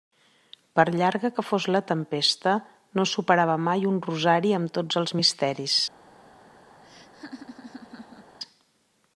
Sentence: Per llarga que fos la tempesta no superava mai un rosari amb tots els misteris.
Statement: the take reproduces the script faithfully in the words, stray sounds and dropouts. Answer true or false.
false